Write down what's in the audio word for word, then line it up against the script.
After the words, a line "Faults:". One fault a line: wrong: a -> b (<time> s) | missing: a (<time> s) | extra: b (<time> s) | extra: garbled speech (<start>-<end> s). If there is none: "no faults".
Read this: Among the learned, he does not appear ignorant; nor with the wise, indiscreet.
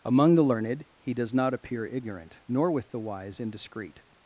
Among the learned, he does not appear ignorant; nor with the wise, indiscreet.
Faults:
no faults